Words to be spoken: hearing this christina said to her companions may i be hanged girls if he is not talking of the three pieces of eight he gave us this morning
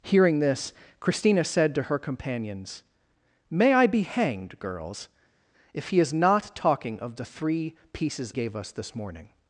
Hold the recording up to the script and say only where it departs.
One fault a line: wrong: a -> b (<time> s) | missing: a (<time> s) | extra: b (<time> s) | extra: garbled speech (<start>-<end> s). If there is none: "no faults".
missing: of eight he (8.3 s)